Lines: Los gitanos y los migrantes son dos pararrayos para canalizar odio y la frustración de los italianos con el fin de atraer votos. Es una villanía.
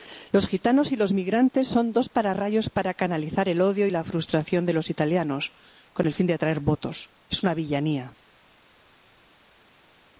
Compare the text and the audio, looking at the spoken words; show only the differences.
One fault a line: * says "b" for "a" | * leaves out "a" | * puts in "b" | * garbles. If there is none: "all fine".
* puts in "el"